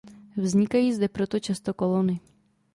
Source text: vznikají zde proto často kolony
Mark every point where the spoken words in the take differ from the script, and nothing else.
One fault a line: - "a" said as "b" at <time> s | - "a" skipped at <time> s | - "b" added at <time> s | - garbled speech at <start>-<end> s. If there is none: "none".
none